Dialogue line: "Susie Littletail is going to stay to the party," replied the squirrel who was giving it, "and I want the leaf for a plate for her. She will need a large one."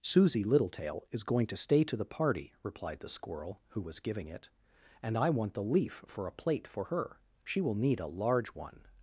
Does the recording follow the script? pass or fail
pass